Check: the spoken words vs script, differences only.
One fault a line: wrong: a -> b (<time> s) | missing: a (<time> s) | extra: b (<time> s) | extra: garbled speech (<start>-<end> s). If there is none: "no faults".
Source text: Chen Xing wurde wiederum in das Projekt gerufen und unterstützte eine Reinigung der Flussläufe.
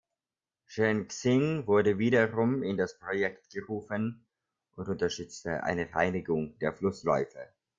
no faults